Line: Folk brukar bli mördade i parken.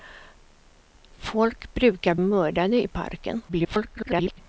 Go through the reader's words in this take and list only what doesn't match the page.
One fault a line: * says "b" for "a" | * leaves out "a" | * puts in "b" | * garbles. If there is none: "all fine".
* leaves out "bli"
* garbles